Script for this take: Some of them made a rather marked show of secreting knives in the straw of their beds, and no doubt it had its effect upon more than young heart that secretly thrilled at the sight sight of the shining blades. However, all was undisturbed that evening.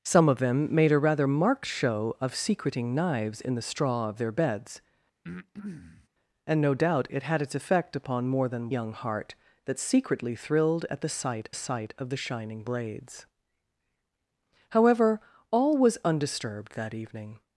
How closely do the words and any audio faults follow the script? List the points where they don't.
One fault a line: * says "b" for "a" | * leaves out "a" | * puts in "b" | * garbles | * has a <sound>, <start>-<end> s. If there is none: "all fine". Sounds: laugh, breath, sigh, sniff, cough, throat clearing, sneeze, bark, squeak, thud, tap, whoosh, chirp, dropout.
* has a breath, 5.2-6.1 s